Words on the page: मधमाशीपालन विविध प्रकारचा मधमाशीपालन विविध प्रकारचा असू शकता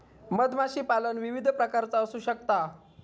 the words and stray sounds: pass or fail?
fail